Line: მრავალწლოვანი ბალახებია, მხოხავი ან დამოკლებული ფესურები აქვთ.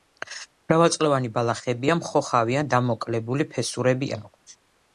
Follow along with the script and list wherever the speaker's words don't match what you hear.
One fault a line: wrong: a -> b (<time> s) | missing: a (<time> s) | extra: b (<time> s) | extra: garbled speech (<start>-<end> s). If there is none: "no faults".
no faults